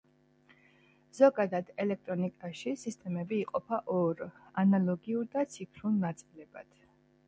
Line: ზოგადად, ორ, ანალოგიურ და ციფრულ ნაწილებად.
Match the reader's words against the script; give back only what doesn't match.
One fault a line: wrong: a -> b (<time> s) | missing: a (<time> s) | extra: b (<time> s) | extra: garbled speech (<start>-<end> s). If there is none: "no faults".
extra: ელექტრონიკაში სისტემები იყოფა (1.9 s)